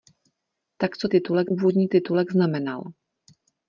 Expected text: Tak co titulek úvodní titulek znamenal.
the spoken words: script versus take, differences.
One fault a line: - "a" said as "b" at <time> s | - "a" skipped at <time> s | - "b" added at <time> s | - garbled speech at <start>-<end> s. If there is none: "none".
none